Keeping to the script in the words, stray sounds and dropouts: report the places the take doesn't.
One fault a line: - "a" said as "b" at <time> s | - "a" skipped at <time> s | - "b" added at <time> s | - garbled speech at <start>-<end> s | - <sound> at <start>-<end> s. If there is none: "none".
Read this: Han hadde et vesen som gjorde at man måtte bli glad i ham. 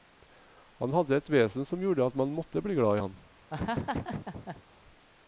- laugh at 3.5-4.6 s